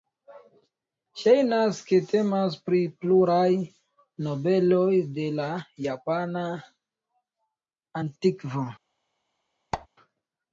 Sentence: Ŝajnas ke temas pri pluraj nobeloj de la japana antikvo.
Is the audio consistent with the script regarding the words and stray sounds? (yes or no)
no